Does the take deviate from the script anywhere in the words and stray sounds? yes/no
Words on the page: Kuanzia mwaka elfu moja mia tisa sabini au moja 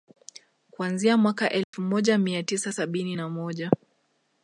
yes